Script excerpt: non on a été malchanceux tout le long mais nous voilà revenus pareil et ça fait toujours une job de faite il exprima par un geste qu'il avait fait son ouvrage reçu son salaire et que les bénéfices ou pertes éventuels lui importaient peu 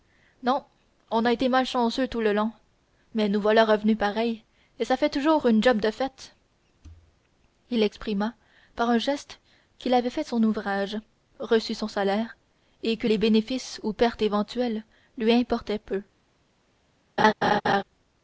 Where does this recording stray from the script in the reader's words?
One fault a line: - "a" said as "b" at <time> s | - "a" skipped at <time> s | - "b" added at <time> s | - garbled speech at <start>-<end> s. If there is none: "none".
none